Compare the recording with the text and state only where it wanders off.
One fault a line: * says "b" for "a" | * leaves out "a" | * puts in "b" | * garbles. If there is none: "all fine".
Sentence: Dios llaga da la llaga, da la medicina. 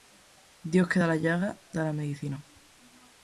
* says "que" for "llaga"